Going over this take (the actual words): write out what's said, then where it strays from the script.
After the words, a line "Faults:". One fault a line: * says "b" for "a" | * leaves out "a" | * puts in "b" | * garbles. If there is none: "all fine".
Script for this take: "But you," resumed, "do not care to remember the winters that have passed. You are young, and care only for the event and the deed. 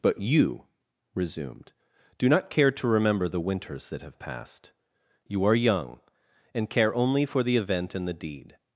"But you," resumed, "do not care to remember the winters that have passed. You are young, and care only for the event and the deed.
Faults:
all fine